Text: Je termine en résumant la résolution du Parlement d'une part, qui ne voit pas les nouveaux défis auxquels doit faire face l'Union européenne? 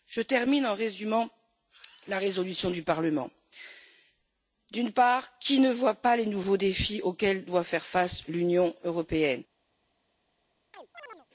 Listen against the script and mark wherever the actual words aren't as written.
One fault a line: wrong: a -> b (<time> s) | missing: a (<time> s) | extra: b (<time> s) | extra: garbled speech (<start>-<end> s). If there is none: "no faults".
no faults